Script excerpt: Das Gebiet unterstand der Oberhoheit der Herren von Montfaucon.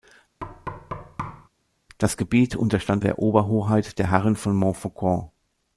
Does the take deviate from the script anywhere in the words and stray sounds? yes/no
yes